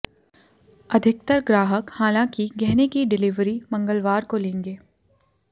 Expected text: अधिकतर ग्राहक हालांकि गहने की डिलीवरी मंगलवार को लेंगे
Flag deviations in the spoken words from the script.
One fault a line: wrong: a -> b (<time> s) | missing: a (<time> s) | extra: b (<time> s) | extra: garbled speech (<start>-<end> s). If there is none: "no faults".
no faults